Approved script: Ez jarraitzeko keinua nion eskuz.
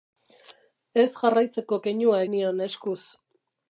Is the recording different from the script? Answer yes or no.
no